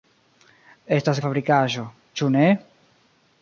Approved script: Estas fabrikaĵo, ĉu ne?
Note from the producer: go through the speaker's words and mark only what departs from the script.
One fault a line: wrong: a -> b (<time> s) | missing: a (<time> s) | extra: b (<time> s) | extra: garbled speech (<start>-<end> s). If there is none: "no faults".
no faults